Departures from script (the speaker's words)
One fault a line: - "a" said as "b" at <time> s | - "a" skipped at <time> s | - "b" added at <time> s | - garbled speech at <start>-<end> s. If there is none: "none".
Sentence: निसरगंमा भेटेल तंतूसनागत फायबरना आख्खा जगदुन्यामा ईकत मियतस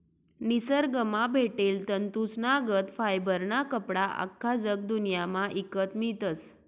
- "कपडा" added at 3.7 s